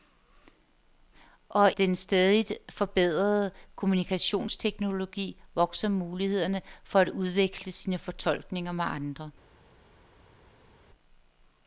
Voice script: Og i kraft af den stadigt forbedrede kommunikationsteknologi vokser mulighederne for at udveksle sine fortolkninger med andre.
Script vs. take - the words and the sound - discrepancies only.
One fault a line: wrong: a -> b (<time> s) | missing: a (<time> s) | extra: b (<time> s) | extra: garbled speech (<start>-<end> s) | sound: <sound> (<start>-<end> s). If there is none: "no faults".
missing: i kraft af (1.7 s)